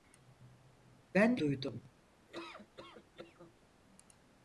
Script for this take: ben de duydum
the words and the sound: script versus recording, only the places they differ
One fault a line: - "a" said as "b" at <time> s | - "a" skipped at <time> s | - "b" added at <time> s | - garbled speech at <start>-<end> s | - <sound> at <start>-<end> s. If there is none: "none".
- laugh at 2.3-3.5 s